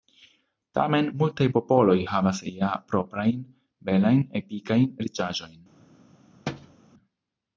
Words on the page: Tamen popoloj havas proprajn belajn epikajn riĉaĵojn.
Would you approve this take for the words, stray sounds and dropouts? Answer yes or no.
no